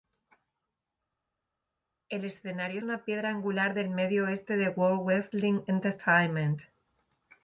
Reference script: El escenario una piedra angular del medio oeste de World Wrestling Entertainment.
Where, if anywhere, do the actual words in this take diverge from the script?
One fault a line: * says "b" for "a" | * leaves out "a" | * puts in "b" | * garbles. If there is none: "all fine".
all fine